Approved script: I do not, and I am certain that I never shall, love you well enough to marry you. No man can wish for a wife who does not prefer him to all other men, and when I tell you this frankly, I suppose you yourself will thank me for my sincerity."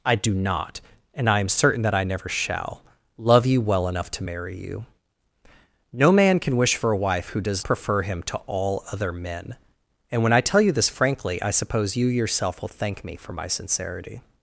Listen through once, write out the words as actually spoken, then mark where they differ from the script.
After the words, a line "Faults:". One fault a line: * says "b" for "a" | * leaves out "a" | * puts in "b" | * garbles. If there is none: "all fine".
I do not, and I am certain that I never shall, love you well enough to marry you. No man can wish for a wife who does prefer him to all other men, and when I tell you this frankly, I suppose you yourself will thank me for my sincerity."
Faults:
* leaves out "not"